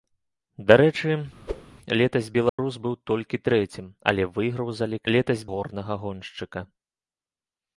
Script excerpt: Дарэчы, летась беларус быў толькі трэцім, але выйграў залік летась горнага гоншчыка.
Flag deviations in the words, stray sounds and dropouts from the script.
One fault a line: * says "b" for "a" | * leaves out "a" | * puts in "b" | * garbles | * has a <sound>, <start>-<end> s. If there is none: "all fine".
* has a whoosh, 1.5-1.6 s
* has a dropout, 2.5-2.6 s